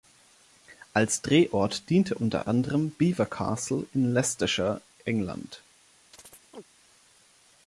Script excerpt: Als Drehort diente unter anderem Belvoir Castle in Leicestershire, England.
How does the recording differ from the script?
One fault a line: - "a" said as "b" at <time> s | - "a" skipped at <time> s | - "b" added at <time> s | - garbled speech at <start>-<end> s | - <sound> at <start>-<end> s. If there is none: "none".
- chirp at 6.1-6.6 s